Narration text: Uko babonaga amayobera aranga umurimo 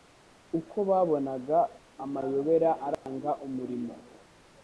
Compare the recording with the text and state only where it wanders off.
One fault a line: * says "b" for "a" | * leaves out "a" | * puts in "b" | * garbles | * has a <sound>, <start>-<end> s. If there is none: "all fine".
* has a dropout, 2.9-3.1 s